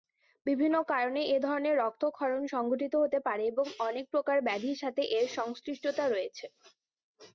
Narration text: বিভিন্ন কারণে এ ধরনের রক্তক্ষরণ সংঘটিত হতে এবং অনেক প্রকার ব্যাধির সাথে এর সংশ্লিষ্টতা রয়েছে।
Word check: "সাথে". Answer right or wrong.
right